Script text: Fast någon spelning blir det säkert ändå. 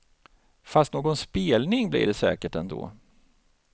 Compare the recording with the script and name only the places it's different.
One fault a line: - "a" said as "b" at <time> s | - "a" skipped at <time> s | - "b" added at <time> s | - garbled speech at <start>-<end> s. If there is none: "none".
none